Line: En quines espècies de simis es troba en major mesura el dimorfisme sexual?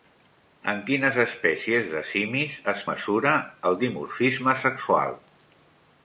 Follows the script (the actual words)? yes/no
no